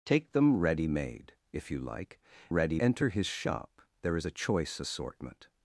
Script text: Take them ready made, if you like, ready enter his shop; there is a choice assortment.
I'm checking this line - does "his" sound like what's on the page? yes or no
yes